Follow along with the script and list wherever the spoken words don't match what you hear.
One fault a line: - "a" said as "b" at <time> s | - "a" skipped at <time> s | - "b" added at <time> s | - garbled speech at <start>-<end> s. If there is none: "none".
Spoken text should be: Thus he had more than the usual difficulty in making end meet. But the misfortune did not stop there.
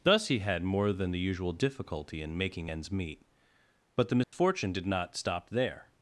- "end" said as "ends" at 2.7 s